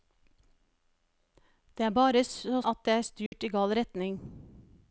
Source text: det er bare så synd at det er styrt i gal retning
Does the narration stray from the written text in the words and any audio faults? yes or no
yes